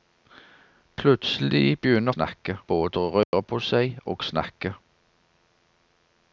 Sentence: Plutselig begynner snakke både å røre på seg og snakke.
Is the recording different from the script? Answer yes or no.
no